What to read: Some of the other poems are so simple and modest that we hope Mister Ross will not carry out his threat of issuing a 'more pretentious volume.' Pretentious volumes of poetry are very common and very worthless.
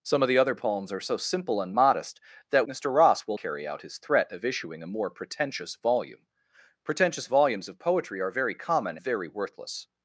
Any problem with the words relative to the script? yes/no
yes